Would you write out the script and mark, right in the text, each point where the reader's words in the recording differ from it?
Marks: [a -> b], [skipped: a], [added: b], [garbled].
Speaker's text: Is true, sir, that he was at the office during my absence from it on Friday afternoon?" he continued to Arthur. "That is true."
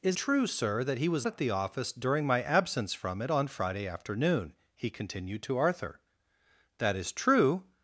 Is true, sir, that he was at the office during my absence from it on Friday afternoon?" he continued to Arthur. "That is true."